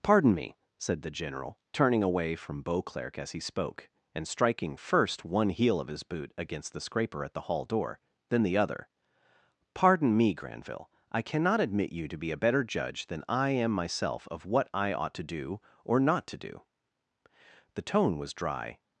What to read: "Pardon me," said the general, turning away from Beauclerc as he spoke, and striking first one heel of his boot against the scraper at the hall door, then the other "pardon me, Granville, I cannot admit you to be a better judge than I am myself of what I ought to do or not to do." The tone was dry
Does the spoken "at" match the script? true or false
true